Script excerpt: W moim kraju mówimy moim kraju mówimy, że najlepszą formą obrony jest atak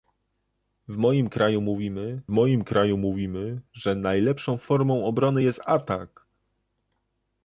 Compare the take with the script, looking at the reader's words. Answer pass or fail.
pass